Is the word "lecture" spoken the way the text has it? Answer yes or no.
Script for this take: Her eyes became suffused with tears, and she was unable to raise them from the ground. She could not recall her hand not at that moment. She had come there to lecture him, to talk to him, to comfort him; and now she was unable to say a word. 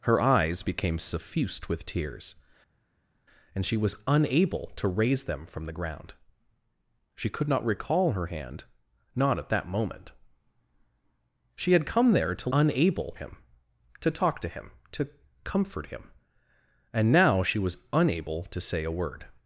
no